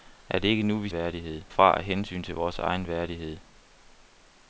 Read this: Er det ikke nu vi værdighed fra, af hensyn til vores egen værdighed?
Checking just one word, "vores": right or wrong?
right